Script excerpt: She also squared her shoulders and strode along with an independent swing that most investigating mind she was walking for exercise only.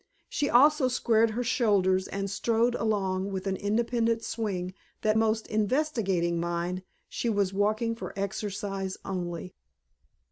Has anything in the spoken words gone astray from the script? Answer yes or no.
no